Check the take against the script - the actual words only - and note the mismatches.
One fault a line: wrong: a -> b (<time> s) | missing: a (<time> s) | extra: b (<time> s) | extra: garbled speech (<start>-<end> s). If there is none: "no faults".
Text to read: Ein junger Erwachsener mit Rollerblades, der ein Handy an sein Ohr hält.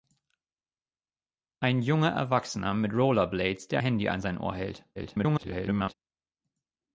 missing: ein (3.8 s)
extra: garbled speech (5.0-5.9 s)